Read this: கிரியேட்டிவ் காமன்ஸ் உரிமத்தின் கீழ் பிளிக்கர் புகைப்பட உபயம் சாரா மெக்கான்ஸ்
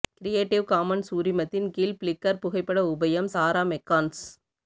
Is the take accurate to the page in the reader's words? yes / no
yes